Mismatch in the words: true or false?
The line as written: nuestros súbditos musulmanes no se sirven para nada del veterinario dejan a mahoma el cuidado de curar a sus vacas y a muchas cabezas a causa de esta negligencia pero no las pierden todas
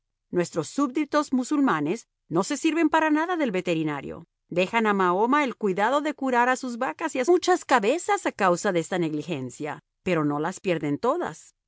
false